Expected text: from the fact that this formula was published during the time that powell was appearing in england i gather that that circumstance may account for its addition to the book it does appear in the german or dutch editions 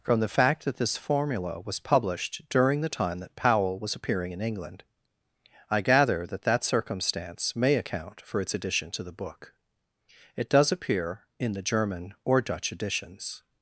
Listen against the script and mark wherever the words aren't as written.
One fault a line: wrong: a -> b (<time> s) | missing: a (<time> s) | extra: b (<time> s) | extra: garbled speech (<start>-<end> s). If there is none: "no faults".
no faults